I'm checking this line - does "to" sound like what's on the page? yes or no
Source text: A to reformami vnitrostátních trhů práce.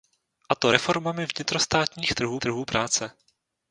yes